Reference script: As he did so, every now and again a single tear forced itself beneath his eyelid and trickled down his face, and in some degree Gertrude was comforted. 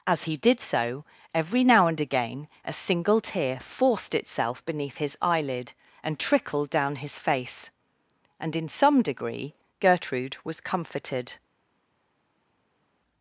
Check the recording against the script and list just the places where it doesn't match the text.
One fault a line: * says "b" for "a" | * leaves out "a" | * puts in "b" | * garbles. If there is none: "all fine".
all fine